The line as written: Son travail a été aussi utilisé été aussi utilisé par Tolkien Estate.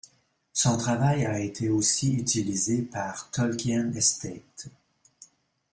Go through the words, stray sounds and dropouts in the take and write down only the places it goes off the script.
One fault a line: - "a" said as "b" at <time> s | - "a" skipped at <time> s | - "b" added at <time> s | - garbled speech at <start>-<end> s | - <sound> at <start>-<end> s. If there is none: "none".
- "été aussi utilisé" skipped at 2.8 s